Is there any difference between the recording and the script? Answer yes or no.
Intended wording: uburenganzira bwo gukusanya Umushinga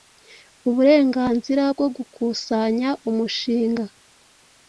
no